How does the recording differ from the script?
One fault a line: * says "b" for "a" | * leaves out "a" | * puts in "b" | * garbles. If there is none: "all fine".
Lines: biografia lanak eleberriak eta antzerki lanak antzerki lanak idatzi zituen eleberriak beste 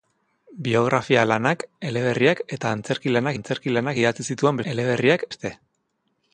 all fine